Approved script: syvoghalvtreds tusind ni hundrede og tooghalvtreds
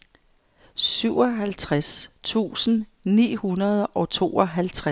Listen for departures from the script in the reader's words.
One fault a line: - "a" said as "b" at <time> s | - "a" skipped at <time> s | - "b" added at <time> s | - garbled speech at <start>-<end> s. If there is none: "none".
none